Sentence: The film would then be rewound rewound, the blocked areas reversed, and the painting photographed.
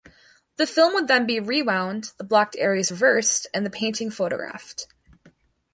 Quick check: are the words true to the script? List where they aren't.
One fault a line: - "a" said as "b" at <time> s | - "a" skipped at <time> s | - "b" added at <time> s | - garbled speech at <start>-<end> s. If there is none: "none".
- "rewound" skipped at 2.1 s